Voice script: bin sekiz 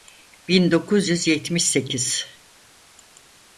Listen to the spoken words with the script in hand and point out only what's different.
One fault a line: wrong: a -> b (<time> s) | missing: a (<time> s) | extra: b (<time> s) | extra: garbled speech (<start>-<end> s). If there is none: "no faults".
extra: dokuz yüz yetmiş (0.7 s)